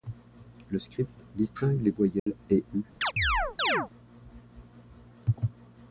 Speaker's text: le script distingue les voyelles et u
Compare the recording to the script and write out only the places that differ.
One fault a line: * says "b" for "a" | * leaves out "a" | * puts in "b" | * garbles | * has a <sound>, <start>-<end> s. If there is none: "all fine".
* has a dropout, 2.2-2.3 s
* has a chirp, 3.0-3.9 s